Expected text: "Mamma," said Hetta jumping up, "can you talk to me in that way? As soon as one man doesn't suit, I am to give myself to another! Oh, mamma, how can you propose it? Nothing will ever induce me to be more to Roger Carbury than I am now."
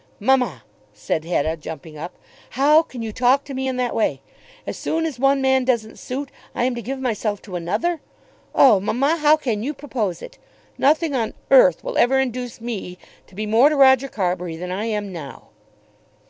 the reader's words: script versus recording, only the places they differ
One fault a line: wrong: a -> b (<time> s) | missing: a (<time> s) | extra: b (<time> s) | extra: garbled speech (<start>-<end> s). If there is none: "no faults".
extra: how (2.5 s)
extra: on earth (11.1 s)